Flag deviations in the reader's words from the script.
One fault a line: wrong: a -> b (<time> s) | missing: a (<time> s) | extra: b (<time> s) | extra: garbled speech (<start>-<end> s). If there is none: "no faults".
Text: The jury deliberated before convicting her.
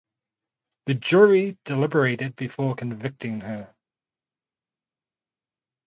no faults